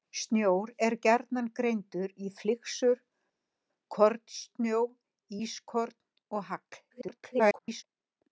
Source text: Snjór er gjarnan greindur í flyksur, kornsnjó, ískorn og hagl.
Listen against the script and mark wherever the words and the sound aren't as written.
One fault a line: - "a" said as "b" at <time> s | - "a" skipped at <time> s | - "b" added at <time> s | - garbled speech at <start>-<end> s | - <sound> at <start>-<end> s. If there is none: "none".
- garbled speech at 6.9-7.8 s